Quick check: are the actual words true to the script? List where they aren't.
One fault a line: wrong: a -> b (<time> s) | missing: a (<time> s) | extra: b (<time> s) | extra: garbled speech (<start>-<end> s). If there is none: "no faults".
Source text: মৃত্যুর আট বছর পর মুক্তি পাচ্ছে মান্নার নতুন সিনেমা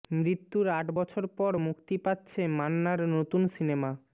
no faults